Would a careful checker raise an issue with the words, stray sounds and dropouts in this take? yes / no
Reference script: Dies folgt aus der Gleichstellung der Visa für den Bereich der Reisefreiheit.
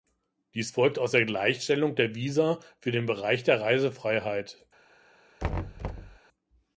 yes